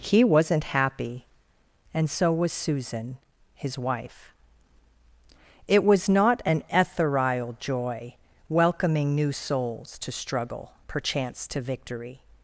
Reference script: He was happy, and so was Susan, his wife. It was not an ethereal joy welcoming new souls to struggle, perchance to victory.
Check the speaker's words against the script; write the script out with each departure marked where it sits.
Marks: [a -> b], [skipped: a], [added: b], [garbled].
He [was -> wasn't] happy, and so was Susan, his wife. It was not an ethereal joy welcoming new souls to struggle, perchance to victory.